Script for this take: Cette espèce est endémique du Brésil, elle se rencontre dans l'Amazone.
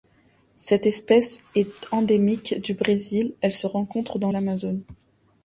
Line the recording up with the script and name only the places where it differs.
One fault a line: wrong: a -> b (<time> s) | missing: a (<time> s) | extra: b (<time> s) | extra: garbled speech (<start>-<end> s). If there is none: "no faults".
no faults